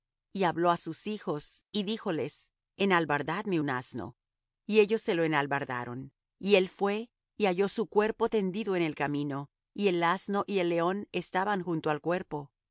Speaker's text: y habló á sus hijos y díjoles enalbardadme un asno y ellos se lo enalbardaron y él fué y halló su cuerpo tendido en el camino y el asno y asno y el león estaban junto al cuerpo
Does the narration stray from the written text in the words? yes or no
yes